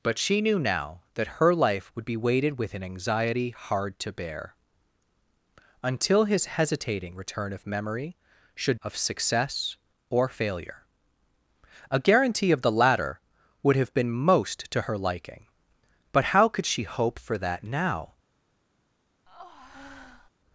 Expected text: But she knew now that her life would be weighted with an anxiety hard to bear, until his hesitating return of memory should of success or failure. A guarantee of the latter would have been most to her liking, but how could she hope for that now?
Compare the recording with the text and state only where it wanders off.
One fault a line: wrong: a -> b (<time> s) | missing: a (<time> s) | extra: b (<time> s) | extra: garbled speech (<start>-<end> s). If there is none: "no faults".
no faults